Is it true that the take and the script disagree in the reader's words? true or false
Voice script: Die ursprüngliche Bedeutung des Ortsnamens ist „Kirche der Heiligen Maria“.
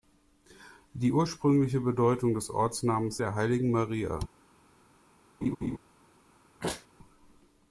true